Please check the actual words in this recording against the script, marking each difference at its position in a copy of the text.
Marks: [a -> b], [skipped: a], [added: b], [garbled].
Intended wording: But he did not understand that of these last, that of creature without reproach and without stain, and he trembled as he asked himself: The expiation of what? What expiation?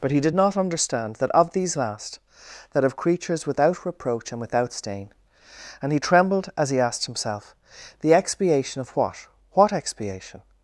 But he did not understand that of these last, that of [creature -> creatures] without reproach and without stain, and he trembled as he asked himself: The expiation of what? What expiation?